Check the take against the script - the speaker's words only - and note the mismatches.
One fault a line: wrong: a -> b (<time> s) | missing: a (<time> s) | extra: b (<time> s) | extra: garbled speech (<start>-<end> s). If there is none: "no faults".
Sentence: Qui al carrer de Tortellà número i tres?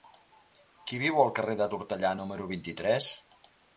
extra: viu (1.0 s)
extra: vint (2.5 s)